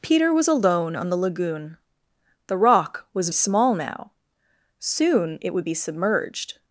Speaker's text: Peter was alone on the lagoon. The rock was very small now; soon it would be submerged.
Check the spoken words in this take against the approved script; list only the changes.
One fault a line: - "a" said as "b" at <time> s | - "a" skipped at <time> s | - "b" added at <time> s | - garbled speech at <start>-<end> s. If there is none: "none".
- "very" skipped at 3.3 s